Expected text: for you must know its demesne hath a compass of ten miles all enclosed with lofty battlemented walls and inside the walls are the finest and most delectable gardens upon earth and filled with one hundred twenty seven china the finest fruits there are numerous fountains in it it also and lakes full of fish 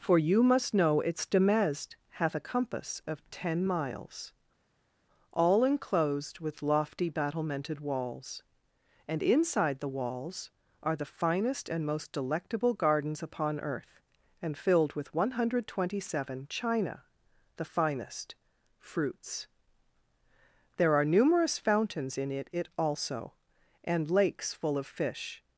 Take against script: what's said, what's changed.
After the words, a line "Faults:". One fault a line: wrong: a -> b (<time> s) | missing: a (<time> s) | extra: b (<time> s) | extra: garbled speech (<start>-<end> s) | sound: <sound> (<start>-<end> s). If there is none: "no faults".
for you must know its demesne hath a compass of ten miles all enclosed with lofty battlemented walls and inside the walls are the finest and most delectable gardens upon earth and filled with one hundred twenty seven china the finest fruits there are numerous fountains in it it also and lakes full of fish
Faults:
no faults